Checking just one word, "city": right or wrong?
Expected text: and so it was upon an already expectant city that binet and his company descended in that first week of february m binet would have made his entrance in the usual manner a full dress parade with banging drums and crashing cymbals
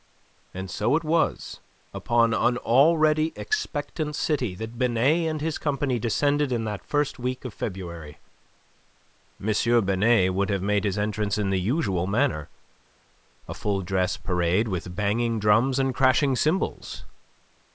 right